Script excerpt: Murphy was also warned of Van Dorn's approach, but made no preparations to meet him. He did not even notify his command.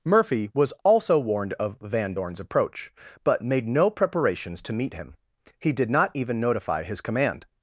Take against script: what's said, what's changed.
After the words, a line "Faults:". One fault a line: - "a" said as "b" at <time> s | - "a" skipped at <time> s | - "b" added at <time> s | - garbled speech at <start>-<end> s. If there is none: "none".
Murphy was also warned of Van Dorn's approach, but made no preparations to meet him. He did not even notify his command.
Faults:
none